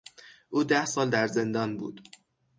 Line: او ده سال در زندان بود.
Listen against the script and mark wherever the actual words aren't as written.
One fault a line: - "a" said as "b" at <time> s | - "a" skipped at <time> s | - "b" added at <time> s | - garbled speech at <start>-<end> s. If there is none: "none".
none